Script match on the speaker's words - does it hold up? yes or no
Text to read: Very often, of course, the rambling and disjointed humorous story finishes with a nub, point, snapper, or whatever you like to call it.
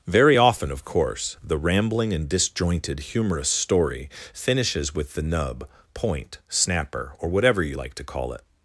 no